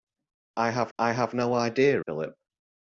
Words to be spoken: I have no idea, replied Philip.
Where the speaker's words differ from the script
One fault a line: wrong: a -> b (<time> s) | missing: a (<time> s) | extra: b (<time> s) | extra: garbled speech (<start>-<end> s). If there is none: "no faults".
extra: I have (1.0 s)
missing: replied (2.0 s)